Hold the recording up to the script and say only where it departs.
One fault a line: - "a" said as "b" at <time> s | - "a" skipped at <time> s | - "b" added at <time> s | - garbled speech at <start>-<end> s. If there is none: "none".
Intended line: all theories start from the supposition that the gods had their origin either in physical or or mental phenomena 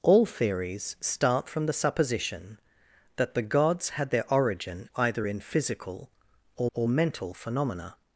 none